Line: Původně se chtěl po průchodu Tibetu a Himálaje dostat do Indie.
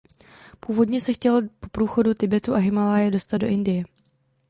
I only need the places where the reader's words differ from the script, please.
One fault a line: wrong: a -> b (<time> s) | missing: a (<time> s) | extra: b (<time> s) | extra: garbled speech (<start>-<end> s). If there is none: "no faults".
no faults